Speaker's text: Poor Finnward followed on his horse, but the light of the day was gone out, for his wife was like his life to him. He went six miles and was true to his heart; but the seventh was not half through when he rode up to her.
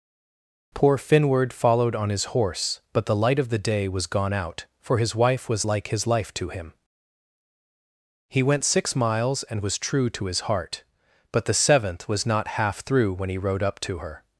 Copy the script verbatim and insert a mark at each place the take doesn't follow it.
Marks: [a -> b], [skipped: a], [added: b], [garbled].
Poor Finnward followed on his horse, but the light of the day was gone out, for his wife was like his life to him. He went six miles and was true to his heart; but the seventh was not half through when he rode up to her.